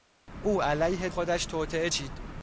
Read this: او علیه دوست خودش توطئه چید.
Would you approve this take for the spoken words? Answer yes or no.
no